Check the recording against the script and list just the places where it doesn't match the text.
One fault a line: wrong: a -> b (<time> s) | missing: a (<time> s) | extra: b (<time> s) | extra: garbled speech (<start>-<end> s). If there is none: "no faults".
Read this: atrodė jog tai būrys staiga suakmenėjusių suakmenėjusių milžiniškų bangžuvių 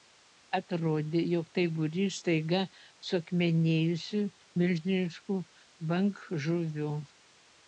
missing: suakmenėjusių (4.2 s)